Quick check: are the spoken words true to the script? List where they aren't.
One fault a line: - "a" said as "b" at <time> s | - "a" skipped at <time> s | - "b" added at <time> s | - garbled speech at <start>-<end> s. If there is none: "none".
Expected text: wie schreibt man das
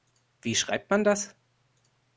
none